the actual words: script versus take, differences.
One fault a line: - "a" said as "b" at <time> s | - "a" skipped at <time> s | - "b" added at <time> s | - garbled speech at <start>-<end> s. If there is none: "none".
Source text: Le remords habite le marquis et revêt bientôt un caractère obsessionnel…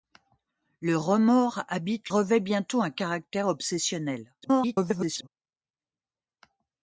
- "le marquis et" skipped at 2.1 s
- garbled speech at 4.4-5.3 s